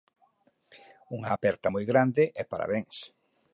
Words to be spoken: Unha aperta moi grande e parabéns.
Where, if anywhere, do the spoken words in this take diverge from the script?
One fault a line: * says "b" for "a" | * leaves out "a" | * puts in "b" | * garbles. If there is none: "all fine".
all fine